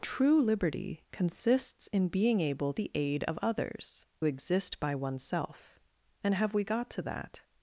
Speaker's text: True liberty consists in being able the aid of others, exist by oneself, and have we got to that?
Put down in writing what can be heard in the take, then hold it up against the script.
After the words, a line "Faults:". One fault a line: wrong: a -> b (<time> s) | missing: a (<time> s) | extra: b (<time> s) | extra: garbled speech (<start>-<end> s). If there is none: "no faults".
True liberty consists in being able the aid of others, exist by oneself, and have we got to that?
Faults:
no faults